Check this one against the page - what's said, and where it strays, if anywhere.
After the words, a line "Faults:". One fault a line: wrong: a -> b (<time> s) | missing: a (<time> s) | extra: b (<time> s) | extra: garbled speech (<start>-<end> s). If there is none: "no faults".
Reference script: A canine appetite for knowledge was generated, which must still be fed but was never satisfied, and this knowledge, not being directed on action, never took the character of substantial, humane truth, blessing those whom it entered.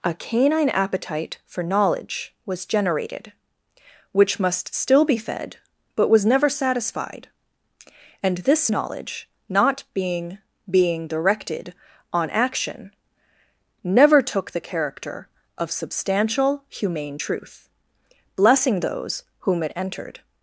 A canine appetite for knowledge was generated, which must still be fed but was never satisfied, and this knowledge, not being being directed on action, never took the character of substantial, humane truth, blessing those whom it entered.
Faults:
extra: being (10.7 s)